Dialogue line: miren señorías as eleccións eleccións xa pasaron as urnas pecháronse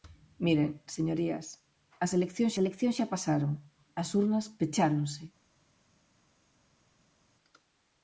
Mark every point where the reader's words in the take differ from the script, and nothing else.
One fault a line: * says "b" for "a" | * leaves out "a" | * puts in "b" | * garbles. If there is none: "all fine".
all fine